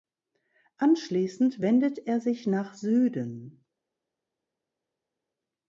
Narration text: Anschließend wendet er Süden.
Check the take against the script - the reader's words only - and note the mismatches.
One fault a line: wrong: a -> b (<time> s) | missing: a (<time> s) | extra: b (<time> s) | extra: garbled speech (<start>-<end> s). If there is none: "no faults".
extra: sich nach (2.2 s)